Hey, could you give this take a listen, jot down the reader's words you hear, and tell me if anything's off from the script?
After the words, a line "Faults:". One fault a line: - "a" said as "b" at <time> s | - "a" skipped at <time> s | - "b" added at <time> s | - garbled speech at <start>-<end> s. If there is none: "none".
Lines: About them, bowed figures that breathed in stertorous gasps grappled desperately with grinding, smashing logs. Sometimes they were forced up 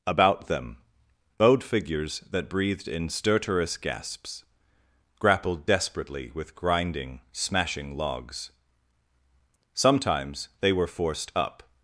About them, bowed figures that breathed in stertorous gasps grappled desperately with grinding, smashing logs. Sometimes they were forced up
Faults:
none